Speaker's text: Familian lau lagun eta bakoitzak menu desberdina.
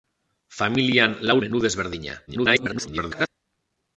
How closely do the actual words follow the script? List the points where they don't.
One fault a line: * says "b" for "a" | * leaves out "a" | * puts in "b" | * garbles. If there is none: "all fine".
* leaves out "lagun eta bakoitzak"
* garbles